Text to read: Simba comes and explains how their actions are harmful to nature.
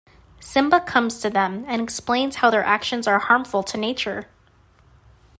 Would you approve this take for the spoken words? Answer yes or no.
no